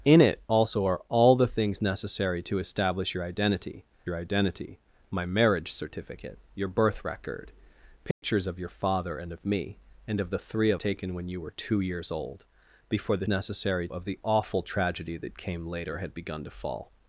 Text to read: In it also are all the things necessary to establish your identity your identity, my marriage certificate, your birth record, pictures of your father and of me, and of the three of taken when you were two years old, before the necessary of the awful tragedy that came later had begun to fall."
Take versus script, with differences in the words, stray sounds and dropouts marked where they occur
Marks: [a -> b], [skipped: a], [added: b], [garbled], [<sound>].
In it also are all the things necessary to establish your identity your identity, my marriage certificate, your birth record, pictures [dropout] of your father and of me, and of the three of taken when you were two years old, before the necessary of the awful tragedy that came later had begun to fall."